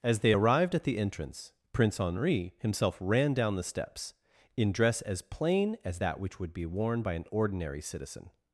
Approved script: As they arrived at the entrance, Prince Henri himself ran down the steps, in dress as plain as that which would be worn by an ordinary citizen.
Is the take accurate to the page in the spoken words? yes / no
yes